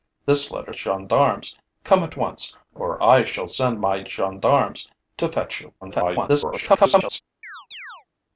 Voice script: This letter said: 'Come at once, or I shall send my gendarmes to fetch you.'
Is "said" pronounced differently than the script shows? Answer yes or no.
yes